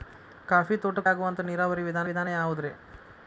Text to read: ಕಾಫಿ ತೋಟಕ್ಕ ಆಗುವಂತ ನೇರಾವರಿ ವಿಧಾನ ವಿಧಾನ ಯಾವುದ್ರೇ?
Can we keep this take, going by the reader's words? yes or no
yes